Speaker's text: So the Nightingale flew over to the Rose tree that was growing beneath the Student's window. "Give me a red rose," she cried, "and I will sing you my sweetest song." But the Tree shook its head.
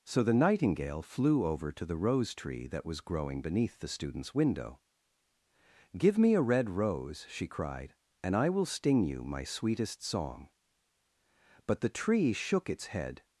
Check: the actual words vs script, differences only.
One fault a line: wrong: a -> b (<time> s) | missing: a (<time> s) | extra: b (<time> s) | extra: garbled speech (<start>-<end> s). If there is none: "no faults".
wrong: sing -> sting (8.7 s)